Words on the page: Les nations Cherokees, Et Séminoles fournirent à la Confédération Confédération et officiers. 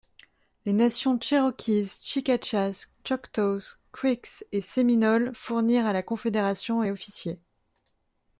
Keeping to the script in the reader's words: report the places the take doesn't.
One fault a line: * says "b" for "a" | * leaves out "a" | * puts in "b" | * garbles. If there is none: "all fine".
* puts in "Chicachas Choctaws Creeks"
* leaves out "Confédération"